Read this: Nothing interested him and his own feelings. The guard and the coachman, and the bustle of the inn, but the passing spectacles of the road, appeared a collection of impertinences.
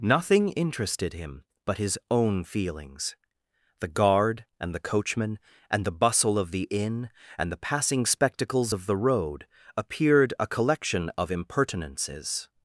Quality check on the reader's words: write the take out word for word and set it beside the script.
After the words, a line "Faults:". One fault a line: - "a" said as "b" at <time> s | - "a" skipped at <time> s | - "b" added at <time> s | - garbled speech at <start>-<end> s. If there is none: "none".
Nothing interested him but his own feelings. The guard and the coachman, and the bustle of the inn, and the passing spectacles of the road, appeared a collection of impertinences.
Faults:
- "and" said as "but" at 1.6 s
- "but" said as "and" at 7.4 s